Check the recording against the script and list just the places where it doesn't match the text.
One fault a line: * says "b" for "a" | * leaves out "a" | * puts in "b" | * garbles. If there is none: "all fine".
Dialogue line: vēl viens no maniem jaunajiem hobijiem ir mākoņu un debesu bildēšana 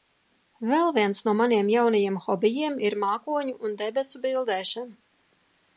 all fine